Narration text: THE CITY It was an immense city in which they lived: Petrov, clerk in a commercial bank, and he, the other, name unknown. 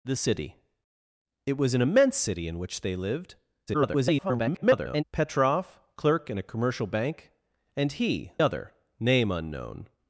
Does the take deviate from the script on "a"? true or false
false